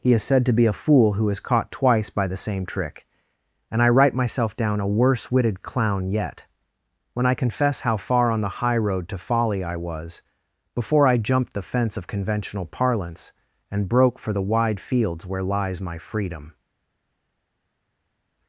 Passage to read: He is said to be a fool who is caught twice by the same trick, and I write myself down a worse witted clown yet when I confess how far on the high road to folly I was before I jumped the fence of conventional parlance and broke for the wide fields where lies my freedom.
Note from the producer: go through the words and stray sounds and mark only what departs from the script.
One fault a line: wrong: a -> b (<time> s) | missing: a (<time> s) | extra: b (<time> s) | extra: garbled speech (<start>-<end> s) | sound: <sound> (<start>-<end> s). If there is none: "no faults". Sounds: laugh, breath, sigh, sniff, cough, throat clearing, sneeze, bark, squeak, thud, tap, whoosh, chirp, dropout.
no faults